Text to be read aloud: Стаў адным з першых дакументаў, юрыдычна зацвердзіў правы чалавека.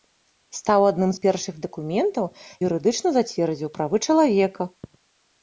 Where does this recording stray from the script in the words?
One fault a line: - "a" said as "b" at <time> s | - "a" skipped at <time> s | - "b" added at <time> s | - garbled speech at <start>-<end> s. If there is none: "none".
none